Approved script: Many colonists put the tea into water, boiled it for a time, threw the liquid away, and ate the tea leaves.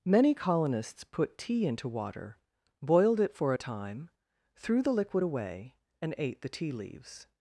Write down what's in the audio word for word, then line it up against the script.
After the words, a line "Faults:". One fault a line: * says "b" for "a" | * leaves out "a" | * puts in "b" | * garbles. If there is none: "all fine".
Many colonists put tea into water, boiled it for a time, threw the liquid away, and ate the tea leaves.
Faults:
* leaves out "the"